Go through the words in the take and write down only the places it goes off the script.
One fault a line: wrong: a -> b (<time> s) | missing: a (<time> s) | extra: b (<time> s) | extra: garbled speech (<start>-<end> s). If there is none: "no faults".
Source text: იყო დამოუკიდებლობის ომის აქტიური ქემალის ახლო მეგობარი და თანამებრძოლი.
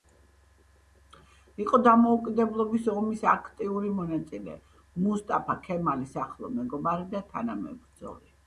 extra: მონაწილე მუსტაფა (4.0 s)